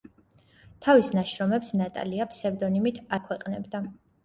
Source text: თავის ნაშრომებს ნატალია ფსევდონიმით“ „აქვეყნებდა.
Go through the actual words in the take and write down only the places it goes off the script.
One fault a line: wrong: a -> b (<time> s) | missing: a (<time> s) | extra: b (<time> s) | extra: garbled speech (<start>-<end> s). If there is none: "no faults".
no faults